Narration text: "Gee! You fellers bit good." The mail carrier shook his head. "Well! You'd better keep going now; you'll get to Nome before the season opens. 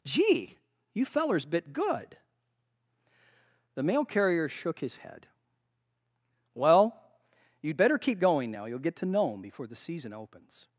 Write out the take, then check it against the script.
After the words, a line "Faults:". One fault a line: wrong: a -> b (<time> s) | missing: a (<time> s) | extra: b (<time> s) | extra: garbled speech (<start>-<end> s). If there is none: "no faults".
"Gee! You fellers bit good." The mail carrier shook his head. "Well! You'd better keep going now; you'll get to Nome before the season opens.
Faults:
no faults